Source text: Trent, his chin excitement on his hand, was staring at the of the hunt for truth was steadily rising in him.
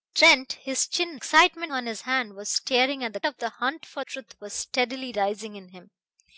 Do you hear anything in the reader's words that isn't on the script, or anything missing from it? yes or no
no